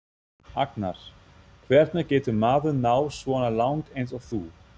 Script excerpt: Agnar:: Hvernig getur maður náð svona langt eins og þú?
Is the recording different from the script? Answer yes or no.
no